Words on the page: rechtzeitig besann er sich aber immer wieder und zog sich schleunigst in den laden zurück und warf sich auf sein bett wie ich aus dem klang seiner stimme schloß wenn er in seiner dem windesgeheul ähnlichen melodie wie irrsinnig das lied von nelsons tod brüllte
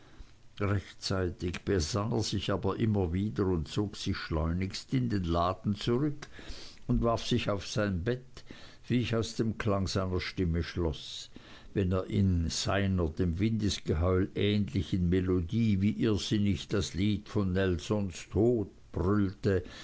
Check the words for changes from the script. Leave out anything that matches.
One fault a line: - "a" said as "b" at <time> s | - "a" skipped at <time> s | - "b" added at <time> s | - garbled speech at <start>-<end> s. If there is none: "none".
none